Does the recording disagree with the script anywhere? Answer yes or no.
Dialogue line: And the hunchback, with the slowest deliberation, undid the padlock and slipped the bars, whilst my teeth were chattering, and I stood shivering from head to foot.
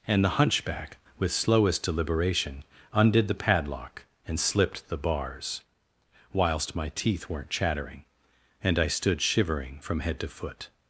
yes